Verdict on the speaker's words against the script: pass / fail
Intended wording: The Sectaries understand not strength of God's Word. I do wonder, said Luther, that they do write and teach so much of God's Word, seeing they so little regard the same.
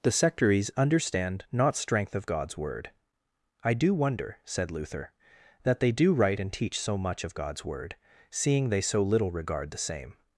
pass